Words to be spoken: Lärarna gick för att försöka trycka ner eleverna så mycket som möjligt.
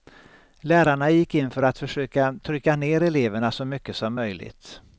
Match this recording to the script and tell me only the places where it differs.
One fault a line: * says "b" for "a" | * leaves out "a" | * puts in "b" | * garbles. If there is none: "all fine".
* puts in "in"